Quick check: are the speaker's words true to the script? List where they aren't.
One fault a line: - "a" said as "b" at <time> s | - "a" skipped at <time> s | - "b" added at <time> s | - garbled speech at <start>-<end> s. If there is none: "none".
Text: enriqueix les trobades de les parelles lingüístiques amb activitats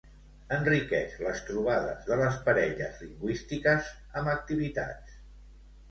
none